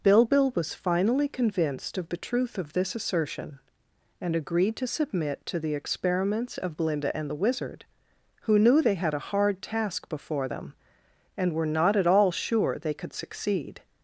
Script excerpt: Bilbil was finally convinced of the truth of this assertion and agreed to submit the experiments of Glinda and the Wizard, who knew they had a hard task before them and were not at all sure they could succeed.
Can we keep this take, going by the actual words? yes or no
no